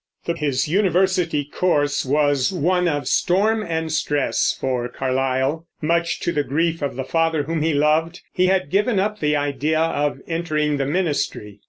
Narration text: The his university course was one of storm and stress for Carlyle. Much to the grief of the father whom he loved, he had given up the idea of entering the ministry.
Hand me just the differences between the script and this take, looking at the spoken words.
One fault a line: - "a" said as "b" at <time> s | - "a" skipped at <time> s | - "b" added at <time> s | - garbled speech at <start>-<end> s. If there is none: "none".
none